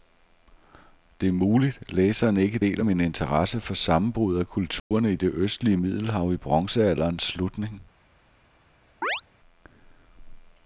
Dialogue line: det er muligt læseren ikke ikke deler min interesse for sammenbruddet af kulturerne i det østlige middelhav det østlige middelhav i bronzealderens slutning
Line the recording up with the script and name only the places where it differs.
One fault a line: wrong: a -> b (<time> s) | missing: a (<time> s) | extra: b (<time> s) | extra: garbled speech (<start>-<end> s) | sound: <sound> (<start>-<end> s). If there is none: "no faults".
missing: ikke (2.6 s)
sound: dropout (4.8-4.9 s)
missing: det østlige middelhav (6.3 s)
sound: chirp (9.0-9.2 s)